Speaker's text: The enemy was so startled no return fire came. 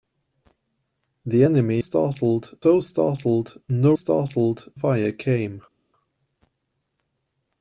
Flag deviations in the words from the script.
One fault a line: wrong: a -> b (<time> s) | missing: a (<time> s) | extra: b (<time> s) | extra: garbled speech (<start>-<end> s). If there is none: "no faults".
wrong: was -> startled (1.8 s)
wrong: return -> startled (3.9 s)